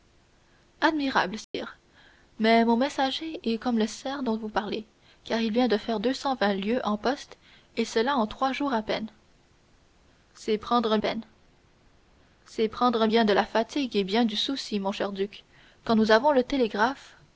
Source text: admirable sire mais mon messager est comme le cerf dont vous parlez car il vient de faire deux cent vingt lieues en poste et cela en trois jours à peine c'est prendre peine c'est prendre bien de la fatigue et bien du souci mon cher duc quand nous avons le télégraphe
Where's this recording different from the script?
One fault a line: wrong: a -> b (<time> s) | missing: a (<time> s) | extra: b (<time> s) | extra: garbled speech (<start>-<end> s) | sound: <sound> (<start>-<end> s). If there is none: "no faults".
sound: dropout (1.4-1.5 s)